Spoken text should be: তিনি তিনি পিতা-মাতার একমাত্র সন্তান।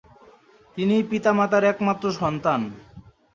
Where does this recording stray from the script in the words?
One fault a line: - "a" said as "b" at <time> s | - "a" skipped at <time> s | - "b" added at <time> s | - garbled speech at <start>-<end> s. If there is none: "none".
- "তিনি" skipped at 0.9 s